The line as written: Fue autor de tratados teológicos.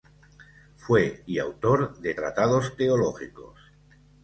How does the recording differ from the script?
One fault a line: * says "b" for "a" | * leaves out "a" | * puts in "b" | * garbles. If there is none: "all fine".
* puts in "y"